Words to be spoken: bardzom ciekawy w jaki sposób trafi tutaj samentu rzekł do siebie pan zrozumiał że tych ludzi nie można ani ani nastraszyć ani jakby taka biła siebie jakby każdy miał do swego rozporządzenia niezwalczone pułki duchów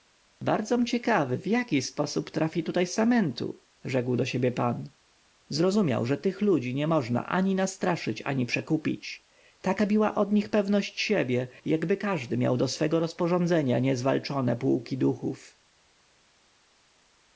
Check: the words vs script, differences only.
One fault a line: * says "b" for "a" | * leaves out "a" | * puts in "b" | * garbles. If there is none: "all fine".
* leaves out "ani"
* says "przekupić" for "jakby"
* puts in "od nich pewność"